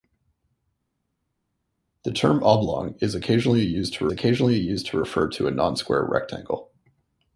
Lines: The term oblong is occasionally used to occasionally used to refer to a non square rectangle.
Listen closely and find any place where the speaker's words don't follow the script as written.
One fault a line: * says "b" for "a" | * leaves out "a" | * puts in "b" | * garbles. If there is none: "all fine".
all fine